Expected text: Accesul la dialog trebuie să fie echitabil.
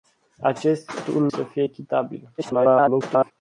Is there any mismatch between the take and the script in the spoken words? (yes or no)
yes